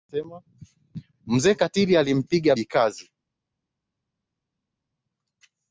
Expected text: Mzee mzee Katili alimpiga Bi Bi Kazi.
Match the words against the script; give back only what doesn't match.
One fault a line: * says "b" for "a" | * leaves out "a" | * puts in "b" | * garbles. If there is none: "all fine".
* leaves out "mzee"
* leaves out "Bi"